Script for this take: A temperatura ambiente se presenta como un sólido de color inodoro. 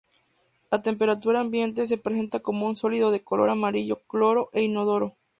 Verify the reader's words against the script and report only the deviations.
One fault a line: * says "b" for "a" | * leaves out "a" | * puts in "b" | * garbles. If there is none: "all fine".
* puts in "amarillo claro e"